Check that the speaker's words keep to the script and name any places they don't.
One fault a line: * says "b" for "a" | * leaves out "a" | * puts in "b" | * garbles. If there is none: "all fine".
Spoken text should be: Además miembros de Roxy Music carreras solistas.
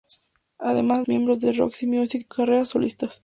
all fine